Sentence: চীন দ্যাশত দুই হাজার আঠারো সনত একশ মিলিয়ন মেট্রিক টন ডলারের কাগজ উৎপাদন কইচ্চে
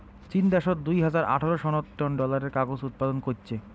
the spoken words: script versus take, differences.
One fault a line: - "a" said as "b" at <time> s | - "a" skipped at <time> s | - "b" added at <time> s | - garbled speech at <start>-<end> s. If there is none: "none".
- "একশ মিলিয়ন মেট্রিক" skipped at 1.9 s